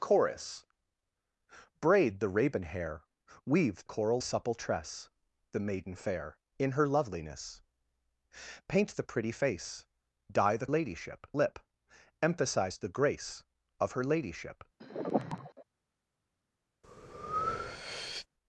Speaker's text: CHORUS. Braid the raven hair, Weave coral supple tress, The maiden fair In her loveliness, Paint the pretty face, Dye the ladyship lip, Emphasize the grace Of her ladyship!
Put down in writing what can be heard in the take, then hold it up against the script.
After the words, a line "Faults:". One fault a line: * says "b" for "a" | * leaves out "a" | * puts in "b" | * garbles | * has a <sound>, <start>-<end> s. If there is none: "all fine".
CHORUS. Braid the raven hair, Weave coral supple tress, The maiden fair In her loveliness, Paint the pretty face, Dye the ladyship lip, Emphasize the grace Of her ladyship!
Faults:
* has a sigh, 14.8-15.6 s
* has a breath, 16.8-18.3 s